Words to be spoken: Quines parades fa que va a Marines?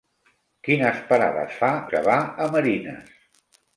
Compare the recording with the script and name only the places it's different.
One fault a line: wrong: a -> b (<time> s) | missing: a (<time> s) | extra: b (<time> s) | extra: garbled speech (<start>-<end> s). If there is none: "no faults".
no faults